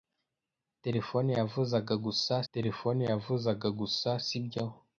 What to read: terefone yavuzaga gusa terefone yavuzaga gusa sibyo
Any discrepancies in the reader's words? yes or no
no